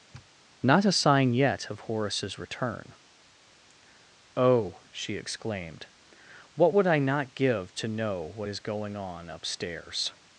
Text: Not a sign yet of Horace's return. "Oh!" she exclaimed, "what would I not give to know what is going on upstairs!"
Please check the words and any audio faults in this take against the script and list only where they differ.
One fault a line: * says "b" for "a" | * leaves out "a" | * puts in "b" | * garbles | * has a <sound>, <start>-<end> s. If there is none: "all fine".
* has a sniff, 0.1-0.3 s